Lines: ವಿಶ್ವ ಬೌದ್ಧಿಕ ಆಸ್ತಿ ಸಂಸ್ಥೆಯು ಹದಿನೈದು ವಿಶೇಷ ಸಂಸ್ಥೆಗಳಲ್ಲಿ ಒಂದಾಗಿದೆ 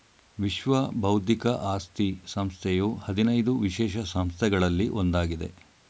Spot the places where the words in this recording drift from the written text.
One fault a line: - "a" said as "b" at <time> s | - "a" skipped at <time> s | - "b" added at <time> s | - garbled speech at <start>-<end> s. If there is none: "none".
none